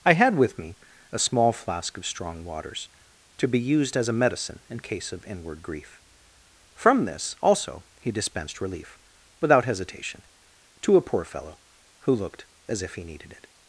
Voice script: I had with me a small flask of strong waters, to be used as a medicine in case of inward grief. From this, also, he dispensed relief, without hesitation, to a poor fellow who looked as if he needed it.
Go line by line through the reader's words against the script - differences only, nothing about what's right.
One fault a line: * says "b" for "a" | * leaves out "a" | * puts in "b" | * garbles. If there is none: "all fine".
all fine